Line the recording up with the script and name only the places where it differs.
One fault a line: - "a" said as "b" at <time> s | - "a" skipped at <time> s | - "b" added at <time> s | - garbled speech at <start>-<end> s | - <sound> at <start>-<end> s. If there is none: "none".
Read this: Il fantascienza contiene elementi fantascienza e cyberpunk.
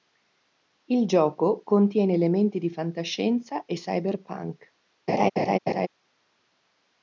- "fantascienza" said as "gioco" at 1.1 s
- "di" added at 2.6 s
- laugh at 5.1-5.9 s